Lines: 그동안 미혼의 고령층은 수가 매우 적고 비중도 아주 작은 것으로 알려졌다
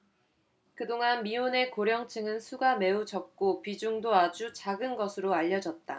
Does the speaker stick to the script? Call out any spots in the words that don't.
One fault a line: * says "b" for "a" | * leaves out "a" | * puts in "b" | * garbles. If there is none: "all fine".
all fine